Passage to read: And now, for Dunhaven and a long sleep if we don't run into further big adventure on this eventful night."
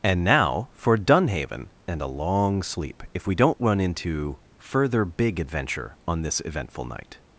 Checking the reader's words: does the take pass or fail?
pass